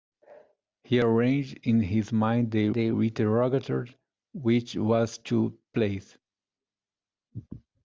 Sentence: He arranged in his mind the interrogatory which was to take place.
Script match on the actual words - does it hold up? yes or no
no